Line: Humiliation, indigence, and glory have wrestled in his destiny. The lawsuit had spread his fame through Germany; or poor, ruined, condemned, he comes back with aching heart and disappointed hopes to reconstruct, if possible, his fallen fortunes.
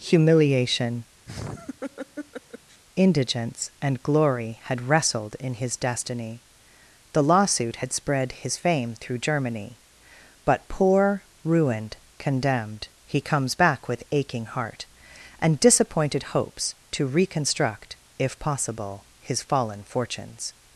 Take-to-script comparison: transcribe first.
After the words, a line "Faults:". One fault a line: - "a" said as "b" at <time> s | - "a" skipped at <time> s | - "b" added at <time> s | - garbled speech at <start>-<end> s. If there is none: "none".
Humiliation, indigence, and glory had wrestled in his destiny. The lawsuit had spread his fame through Germany; but poor, ruined, condemned, he comes back with aching heart and disappointed hopes to reconstruct, if possible, his fallen fortunes.
Faults:
- "have" said as "had" at 4.6 s
- "or" said as "but" at 10.5 s